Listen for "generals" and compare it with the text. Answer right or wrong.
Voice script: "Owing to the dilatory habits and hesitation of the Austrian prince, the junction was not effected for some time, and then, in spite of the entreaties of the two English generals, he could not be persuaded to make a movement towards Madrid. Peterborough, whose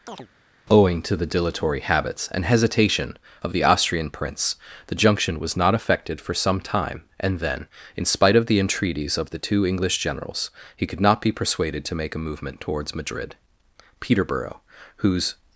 right